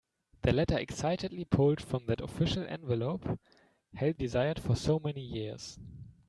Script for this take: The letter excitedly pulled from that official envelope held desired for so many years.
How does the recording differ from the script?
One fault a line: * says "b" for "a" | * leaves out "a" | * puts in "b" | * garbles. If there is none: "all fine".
all fine